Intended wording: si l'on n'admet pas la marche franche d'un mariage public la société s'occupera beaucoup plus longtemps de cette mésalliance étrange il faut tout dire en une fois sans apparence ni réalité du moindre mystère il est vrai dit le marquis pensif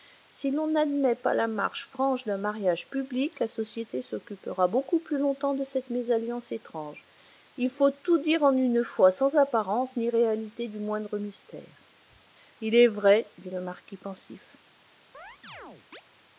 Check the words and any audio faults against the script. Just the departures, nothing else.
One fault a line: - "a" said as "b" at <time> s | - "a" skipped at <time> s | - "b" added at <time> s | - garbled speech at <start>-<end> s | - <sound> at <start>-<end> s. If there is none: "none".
- chirp at 15.1-16.0 s